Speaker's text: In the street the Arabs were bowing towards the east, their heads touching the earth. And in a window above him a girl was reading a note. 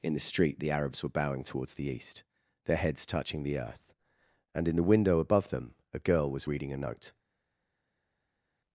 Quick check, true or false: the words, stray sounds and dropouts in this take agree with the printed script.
false